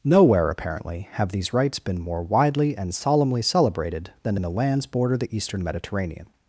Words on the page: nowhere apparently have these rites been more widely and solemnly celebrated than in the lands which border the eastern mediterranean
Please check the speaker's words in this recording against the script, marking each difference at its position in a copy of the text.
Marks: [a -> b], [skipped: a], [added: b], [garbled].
nowhere apparently have these rites been more widely and solemnly celebrated than in the lands [skipped: which] border the eastern mediterranean